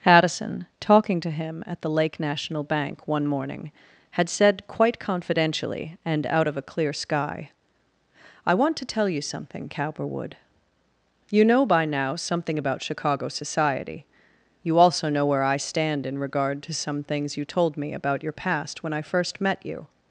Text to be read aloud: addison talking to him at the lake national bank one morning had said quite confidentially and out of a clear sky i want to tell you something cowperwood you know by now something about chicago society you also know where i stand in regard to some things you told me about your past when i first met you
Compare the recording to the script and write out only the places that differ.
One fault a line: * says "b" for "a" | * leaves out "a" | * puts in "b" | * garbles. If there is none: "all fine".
all fine